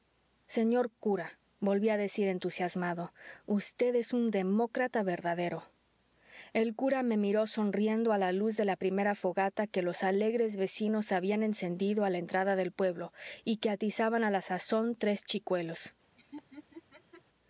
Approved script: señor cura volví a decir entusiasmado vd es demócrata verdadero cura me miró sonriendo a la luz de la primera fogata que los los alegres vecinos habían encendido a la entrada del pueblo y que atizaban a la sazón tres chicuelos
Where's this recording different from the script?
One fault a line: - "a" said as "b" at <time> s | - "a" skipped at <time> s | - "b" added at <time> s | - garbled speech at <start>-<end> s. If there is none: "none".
- "un" added at 4.1 s
- "el" added at 6.5 s
- "los" skipped at 10.0 s